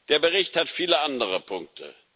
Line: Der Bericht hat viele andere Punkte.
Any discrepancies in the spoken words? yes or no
no